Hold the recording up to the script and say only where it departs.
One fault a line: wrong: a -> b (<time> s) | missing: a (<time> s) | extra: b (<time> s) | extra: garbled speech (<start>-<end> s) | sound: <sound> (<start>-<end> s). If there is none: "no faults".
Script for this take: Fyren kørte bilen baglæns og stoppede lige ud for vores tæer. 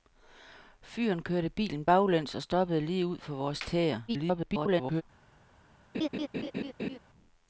extra: garbled speech (4.1-5.0 s)
sound: laugh (5.9-7.0 s)